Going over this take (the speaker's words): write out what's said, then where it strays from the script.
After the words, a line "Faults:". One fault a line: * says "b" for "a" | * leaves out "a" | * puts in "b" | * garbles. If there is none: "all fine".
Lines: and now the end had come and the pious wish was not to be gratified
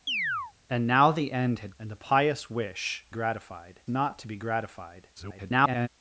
and now the end had and the pious wish gratified not to be gratified [garbled]
Faults:
* leaves out "come"
* says "gratified" for "was"
* garbles